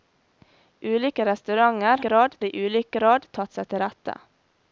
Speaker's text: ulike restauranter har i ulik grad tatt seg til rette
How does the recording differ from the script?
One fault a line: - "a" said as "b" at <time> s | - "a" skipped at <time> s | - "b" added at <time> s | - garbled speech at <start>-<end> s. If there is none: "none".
- "har" said as "grad" at 2.1 s